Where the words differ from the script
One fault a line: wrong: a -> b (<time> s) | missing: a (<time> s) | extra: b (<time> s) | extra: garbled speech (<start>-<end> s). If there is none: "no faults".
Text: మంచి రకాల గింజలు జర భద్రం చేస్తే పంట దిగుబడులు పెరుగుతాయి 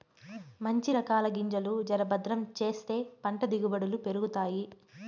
no faults